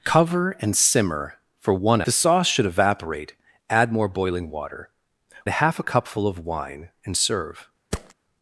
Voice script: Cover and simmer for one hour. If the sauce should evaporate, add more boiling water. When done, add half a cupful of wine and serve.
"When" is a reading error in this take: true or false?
true